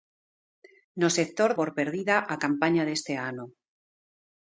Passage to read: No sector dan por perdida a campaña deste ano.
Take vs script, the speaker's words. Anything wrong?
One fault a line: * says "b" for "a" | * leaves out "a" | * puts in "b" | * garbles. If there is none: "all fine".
* leaves out "dan"